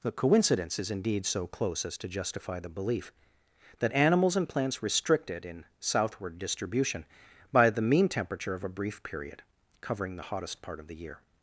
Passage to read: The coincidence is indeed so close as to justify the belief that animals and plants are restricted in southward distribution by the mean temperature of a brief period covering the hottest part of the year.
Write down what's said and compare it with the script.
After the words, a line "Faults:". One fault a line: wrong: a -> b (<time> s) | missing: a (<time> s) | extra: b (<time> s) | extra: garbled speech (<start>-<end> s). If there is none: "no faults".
The coincidence is indeed so close as to justify the belief that animals and plants restricted in southward distribution by the mean temperature of a brief period covering the hottest part of the year.
Faults:
missing: are (4.8 s)